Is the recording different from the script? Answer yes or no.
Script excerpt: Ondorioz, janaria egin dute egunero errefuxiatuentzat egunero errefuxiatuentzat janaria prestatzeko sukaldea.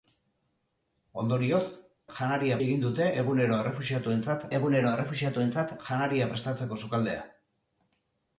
no